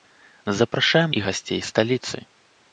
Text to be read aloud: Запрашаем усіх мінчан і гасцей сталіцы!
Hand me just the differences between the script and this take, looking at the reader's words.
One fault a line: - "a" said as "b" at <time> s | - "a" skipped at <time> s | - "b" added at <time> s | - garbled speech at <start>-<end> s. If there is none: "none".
- "усіх мінчан" skipped at 1.1 s